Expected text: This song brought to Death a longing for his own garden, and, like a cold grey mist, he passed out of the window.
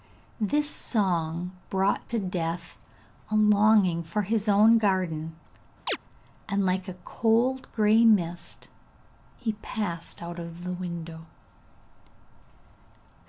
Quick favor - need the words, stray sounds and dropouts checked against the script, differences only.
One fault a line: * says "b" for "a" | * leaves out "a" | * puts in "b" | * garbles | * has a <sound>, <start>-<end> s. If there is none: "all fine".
* has a chirp, 5.9-6.0 s